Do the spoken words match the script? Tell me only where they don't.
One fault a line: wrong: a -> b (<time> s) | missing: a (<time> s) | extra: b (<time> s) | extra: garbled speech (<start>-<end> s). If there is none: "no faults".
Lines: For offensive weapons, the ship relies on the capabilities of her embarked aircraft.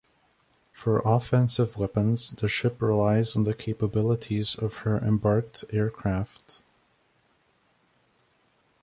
no faults